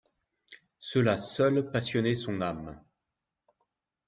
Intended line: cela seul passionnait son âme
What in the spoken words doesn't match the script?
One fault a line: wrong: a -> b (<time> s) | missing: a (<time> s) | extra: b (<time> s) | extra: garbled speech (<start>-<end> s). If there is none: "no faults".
no faults